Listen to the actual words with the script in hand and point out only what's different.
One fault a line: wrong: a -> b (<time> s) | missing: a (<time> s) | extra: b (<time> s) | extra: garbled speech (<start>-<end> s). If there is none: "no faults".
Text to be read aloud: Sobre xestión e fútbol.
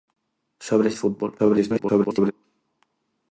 missing: xestión (0.9 s)
extra: garbled speech (1.4-2.3 s)